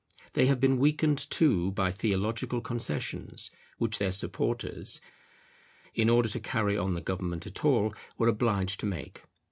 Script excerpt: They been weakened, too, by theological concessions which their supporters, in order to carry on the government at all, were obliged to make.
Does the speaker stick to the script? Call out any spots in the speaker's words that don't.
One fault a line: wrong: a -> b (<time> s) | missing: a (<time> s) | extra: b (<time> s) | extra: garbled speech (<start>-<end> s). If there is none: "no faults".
extra: have (0.5 s)